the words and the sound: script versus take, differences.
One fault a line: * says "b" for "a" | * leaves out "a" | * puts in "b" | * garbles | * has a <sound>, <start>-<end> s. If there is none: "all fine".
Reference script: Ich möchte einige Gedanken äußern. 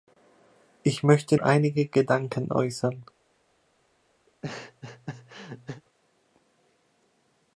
* has a laugh, 4.3-5.8 s